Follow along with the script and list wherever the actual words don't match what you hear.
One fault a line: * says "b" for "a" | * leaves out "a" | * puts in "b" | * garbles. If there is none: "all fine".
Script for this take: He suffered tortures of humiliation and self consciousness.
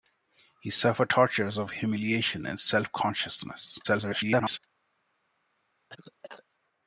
* garbles